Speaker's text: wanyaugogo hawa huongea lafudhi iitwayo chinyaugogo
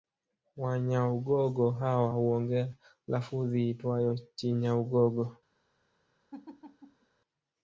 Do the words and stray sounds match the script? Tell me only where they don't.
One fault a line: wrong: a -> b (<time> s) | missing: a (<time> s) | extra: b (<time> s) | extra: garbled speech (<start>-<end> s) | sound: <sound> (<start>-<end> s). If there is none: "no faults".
sound: laugh (6.3-7.1 s)